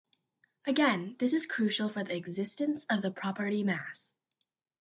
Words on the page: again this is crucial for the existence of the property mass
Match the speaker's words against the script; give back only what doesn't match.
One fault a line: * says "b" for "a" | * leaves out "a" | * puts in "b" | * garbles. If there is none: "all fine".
all fine